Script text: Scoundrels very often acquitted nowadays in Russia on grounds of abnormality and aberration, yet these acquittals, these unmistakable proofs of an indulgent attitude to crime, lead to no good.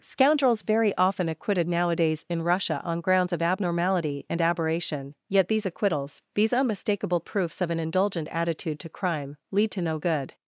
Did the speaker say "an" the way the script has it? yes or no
yes